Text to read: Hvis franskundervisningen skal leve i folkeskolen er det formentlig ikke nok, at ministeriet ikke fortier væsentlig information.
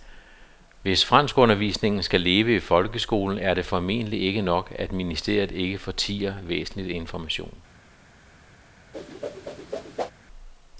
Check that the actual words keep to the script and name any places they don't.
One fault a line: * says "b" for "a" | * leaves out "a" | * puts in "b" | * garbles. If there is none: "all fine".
all fine